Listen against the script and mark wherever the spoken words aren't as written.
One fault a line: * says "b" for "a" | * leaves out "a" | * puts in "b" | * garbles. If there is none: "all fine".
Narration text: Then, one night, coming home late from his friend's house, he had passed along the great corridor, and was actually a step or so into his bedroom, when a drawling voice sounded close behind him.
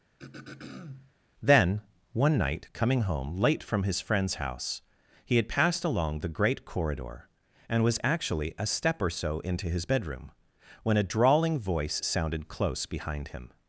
all fine